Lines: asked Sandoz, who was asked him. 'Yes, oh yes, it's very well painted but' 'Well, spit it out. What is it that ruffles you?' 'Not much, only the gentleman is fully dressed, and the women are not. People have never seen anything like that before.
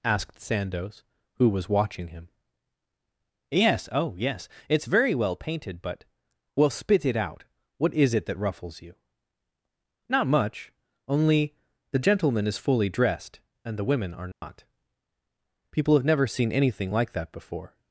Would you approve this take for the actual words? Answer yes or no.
no